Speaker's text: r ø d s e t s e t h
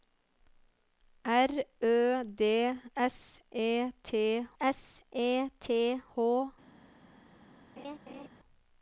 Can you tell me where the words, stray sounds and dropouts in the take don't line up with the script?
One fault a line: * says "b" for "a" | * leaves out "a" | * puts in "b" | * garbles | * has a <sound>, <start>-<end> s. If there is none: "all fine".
* has a laugh, 7.8-8.3 s